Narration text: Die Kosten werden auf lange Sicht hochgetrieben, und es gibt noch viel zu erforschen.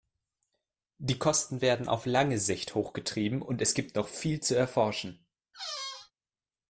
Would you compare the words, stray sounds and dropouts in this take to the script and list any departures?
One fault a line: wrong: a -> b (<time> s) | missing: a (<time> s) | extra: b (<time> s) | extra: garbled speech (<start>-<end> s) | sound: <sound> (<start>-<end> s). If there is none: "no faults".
sound: squeak (5.5-6.1 s)